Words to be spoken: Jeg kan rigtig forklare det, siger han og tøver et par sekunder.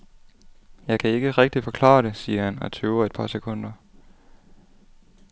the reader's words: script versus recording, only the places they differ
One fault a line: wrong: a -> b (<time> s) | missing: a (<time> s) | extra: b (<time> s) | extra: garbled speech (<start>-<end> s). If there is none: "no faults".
extra: ikke (1.1 s)